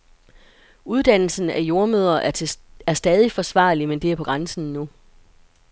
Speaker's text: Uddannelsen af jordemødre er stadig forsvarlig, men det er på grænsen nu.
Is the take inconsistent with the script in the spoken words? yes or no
no